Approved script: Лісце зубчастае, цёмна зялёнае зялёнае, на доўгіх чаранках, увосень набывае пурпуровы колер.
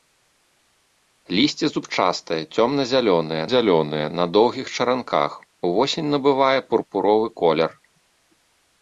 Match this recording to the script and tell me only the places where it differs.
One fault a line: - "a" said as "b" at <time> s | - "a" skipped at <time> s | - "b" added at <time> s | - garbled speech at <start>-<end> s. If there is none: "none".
none